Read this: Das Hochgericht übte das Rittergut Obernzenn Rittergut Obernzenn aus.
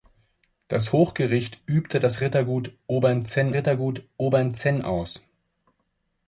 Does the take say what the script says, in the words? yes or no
yes